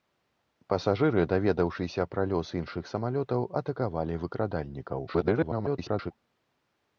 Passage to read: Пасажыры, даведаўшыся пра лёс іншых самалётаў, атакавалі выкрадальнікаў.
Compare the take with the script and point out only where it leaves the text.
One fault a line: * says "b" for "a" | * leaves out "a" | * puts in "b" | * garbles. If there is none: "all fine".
* garbles